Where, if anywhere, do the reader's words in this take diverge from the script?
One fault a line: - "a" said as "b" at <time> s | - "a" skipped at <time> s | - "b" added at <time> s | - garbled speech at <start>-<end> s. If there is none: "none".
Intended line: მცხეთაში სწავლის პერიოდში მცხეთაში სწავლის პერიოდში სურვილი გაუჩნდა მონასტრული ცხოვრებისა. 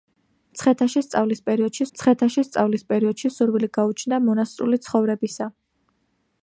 none